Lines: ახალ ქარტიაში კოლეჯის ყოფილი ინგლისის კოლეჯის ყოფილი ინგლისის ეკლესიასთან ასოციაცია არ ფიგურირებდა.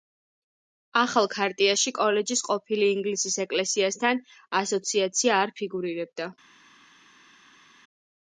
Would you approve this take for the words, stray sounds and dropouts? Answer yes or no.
no